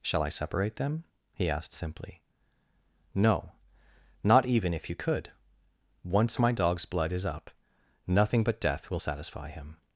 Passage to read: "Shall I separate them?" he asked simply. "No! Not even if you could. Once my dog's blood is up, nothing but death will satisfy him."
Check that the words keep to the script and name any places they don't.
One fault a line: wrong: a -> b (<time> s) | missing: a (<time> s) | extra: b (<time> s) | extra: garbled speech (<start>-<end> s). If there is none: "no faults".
no faults